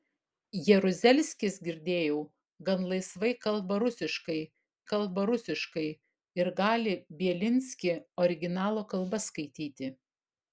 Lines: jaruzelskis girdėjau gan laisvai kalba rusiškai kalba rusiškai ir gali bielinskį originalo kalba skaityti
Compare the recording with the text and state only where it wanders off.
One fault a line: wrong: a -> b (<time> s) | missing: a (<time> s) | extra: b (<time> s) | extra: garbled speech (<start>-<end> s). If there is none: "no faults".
no faults